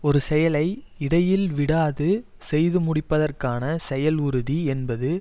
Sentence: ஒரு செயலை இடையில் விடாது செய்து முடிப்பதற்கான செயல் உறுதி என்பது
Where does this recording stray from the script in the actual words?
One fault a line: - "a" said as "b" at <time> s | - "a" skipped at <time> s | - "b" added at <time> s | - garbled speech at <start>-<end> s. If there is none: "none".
none